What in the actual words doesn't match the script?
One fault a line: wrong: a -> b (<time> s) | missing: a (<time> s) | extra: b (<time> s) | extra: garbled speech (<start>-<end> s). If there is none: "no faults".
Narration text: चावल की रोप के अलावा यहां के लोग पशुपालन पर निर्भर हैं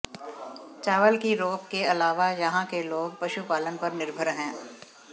no faults